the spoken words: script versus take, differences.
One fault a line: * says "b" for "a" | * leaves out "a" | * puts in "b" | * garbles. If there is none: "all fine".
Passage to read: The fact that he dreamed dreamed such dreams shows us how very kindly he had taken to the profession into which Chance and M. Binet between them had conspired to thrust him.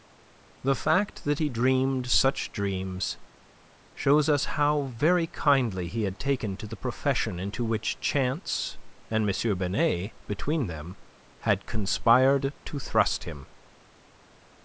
* leaves out "dreamed"